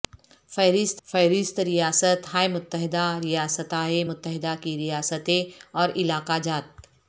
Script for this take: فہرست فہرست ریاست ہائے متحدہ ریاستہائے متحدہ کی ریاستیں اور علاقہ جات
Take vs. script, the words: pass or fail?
pass